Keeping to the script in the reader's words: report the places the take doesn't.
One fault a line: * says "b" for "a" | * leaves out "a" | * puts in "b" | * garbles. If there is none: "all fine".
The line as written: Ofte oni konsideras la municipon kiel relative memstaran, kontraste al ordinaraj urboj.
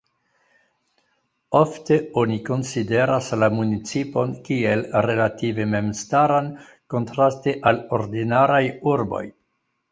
all fine